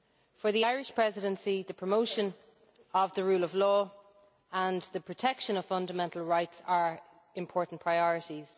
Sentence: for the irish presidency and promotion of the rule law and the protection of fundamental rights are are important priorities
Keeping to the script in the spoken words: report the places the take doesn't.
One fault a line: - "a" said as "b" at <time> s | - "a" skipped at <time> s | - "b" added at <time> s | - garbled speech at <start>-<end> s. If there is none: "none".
- "and" said as "the" at 1.6 s
- "of" added at 3.4 s
- "are" skipped at 7.0 s